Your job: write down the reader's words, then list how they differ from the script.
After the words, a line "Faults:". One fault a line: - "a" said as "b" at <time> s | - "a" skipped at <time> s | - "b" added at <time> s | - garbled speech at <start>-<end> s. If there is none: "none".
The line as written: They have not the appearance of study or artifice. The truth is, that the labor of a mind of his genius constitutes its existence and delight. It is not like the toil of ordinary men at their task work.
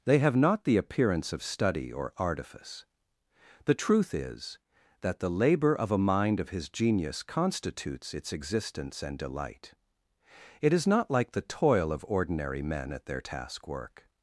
They have not the appearance of study or artifice. The truth is, that the labor of a mind of his genius constitutes its existence and delight. It is not like the toil of ordinary men at their task work.
Faults:
none